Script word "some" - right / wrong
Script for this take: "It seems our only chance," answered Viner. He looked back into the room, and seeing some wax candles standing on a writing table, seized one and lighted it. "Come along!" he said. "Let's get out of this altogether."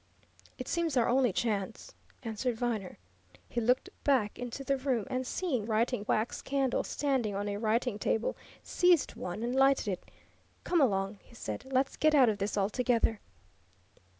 wrong